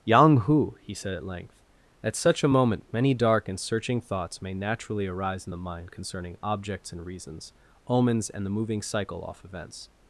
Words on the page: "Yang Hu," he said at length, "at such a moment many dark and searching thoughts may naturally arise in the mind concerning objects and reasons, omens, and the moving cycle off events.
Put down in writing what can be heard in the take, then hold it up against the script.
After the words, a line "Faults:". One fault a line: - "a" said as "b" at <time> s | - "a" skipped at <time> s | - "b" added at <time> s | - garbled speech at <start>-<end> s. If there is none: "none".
"Yang Hu," he said at length, "at such a moment many dark and searching thoughts may naturally arise in the mind concerning objects and reasons, omens, and the moving cycle off events.
Faults:
none